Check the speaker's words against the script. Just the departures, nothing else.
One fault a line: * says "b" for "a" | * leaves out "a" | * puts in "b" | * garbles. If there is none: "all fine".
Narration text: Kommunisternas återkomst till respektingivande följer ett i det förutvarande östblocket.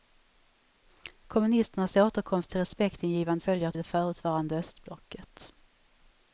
all fine